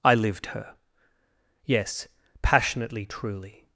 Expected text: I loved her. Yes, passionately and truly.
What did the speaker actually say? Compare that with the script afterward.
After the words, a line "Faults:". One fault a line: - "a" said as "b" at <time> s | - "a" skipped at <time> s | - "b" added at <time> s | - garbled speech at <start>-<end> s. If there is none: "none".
I lived her. Yes, passionately truly.
Faults:
- "loved" said as "lived" at 0.1 s
- "and" skipped at 3.0 s